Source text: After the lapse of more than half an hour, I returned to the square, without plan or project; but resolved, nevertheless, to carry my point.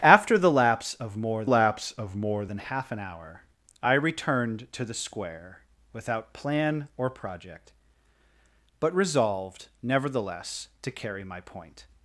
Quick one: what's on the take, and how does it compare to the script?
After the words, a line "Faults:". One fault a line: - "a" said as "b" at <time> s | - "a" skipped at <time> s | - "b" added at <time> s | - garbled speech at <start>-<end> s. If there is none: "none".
After the lapse of more lapse of more than half an hour, I returned to the square, without plan or project; but resolved, nevertheless, to carry my point.
Faults:
- "lapse of more" added at 1.4 s